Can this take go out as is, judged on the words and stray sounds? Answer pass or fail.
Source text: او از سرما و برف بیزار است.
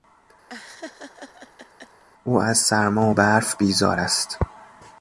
fail